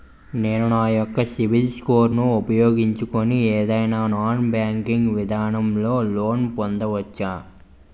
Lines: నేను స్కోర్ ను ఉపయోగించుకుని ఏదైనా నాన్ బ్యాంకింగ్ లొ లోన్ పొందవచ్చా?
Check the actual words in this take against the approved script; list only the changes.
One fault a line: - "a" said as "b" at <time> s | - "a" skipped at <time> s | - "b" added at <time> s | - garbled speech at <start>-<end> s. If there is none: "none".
- "నా యెక్క సిబిల్" added at 0.7 s
- "విధానం" added at 5.2 s